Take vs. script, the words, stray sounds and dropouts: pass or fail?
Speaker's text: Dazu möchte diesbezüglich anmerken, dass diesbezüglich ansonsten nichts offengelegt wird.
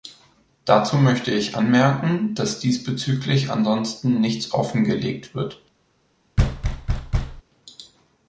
fail